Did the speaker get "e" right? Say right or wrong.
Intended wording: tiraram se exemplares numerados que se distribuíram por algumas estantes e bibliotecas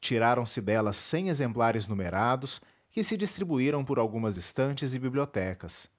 right